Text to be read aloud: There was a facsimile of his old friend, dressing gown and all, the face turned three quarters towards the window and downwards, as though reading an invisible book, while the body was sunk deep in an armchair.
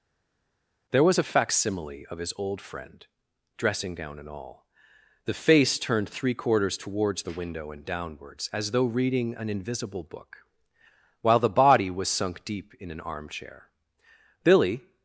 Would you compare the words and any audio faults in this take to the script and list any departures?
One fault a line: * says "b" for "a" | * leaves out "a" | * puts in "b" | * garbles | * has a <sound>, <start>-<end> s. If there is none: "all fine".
* puts in "Billy"